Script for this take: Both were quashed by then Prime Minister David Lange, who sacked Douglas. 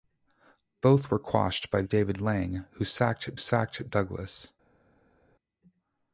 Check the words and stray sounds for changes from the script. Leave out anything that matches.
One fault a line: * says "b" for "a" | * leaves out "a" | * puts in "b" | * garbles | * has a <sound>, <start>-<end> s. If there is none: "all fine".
* leaves out "then Prime Minister"
* puts in "sacked"